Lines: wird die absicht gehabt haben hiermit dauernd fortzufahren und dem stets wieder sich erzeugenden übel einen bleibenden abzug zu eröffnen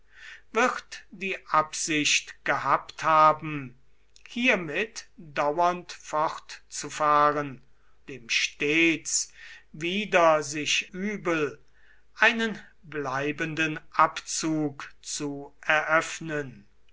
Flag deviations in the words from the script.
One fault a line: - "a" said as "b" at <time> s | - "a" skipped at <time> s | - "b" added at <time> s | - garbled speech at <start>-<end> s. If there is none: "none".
- "und" skipped at 7.6 s
- "erzeugenden" skipped at 10.9 s